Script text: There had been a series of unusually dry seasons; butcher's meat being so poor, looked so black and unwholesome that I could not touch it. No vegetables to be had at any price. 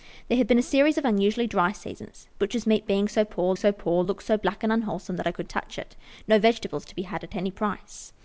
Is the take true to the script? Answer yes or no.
no